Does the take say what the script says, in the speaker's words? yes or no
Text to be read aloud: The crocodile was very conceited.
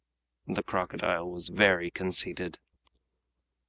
yes